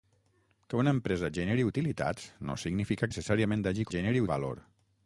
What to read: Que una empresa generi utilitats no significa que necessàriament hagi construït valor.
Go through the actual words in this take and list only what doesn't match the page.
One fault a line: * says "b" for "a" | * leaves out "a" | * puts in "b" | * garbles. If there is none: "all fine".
* leaves out "que"
* says "generi" for "construït"